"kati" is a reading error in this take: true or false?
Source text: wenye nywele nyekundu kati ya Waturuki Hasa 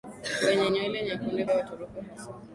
true